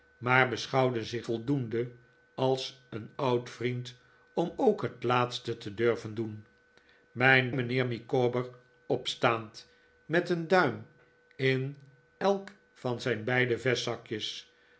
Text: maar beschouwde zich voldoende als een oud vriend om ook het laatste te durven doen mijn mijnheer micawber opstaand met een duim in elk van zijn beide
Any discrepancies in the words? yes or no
no